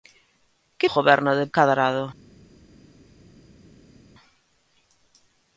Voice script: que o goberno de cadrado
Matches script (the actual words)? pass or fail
pass